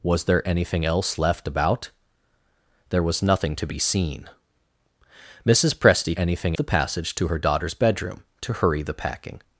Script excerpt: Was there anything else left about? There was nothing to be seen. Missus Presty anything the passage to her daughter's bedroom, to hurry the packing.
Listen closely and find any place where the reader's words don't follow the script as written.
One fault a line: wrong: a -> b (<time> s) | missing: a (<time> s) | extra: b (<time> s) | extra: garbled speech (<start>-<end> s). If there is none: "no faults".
no faults